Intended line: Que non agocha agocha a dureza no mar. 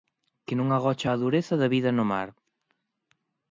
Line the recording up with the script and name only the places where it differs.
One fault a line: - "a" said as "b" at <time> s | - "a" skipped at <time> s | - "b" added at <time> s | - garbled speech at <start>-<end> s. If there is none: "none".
- "agocha" skipped at 1.1 s
- "da vida" added at 1.6 s